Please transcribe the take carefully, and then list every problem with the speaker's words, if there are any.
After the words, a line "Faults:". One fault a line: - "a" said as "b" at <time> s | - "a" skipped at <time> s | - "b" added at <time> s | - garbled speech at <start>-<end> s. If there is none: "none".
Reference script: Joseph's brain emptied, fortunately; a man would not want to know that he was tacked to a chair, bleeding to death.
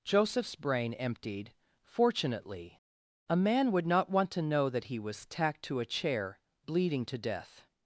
Joseph's brain emptied, fortunately; a man would not want to know that he was tacked to a chair, bleeding to death.
Faults:
none